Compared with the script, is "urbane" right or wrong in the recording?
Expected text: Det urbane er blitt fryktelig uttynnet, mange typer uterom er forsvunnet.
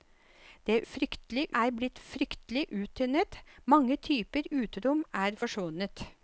wrong